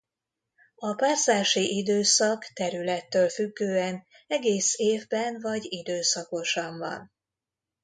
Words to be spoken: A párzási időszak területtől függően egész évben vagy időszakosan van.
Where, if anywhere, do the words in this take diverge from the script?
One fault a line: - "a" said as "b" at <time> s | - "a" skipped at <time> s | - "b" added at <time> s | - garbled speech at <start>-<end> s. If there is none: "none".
none